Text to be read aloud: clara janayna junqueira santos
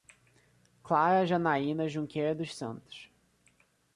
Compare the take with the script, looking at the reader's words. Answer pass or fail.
fail